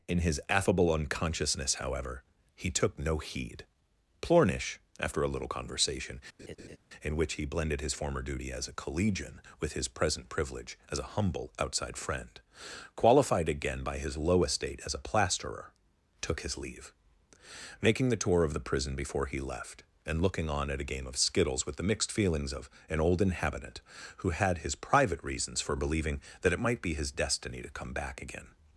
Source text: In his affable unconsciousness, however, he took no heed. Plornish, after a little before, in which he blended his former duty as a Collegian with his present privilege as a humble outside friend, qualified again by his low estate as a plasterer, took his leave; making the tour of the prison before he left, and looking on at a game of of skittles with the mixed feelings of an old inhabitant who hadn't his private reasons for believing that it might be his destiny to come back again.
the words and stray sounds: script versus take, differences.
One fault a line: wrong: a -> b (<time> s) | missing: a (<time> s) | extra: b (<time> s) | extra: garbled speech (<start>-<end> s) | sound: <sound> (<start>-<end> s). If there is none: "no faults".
wrong: before -> conversation (5.4 s)
sound: laugh (6.4-6.8 s)
missing: of (21.2 s)
wrong: hadn't -> had (24.3 s)